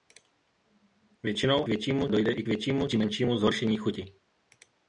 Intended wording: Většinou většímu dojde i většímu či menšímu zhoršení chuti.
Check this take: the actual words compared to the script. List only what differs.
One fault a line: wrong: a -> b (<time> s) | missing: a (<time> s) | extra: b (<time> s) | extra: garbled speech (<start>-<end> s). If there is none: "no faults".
no faults